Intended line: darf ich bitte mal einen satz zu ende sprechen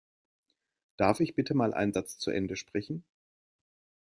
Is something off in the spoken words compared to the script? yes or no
no